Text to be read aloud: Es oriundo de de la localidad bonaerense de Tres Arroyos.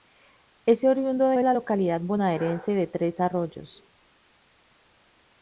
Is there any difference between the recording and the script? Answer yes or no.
no